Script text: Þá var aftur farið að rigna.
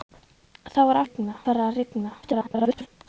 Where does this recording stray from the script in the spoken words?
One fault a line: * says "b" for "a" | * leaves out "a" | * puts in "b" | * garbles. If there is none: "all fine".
* says "rigna" for "aftur"
* garbles